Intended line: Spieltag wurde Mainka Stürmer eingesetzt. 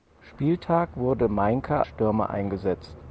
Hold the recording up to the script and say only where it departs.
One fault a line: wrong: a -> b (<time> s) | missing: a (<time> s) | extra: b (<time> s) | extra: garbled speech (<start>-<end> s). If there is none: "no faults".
no faults